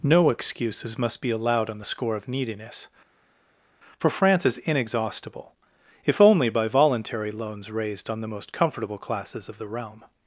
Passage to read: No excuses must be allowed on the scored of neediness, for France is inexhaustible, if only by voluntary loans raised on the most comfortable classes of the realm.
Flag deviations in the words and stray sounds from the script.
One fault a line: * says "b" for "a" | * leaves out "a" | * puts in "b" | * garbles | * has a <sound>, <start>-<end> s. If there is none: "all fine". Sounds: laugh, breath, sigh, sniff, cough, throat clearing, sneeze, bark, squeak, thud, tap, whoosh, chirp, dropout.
* says "score" for "scored"